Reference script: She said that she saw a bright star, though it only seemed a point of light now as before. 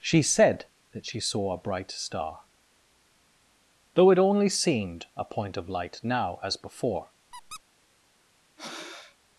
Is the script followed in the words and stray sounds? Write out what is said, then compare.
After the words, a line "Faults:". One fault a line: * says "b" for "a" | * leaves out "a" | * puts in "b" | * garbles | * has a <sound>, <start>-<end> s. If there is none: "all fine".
She said that she saw a bright star, though it only seemed a point of light now as before.
Faults:
* has a squeak, 7.3-7.6 s
* has a breath, 8.6-9.2 s